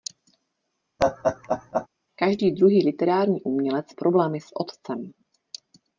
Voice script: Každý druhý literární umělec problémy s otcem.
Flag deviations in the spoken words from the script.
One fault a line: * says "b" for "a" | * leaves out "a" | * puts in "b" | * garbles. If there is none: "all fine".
all fine